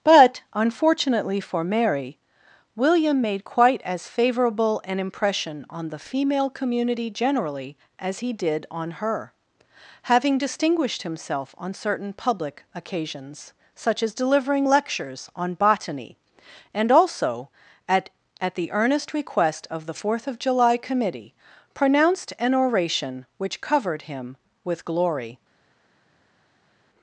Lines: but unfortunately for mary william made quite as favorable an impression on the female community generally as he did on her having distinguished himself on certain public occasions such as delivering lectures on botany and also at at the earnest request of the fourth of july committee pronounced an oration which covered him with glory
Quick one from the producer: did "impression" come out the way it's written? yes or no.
yes